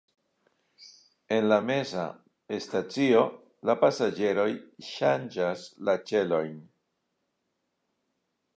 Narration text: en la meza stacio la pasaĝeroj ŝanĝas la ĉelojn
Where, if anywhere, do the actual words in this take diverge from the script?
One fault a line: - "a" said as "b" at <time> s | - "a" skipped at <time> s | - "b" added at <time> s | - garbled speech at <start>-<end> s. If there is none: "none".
none